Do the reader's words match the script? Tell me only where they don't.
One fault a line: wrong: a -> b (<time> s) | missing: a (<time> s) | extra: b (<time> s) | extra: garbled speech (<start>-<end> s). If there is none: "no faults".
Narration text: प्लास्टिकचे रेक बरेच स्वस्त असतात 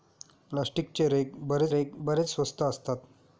extra: रेक बरेच (1.7 s)